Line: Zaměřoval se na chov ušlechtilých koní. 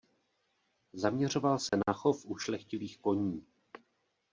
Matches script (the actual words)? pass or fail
pass